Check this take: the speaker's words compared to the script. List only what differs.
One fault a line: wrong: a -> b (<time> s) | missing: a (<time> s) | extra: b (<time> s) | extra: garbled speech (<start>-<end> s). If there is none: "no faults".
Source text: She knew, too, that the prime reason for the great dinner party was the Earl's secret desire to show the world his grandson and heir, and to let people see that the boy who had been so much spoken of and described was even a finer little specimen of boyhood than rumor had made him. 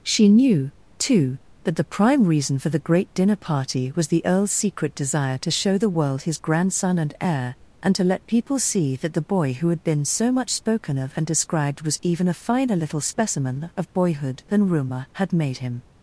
no faults